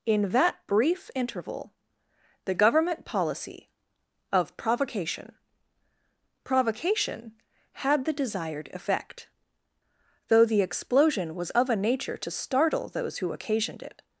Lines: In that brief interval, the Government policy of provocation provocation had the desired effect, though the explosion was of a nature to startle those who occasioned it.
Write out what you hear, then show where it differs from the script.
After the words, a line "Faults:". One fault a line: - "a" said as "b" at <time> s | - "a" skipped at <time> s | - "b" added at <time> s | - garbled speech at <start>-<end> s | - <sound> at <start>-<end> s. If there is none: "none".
In that brief interval, the Government policy of provocation provocation had the desired effect, though the explosion was of a nature to startle those who occasioned it.
Faults:
none